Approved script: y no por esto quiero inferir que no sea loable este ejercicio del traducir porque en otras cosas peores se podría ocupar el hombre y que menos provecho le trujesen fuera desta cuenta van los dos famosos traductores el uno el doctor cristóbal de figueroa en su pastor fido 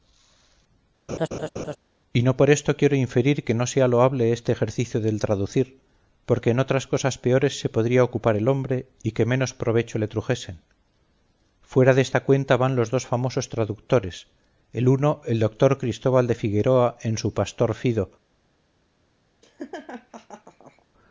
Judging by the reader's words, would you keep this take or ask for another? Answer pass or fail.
pass